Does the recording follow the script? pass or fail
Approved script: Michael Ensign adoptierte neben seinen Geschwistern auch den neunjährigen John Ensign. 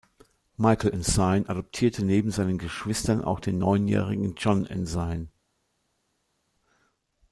pass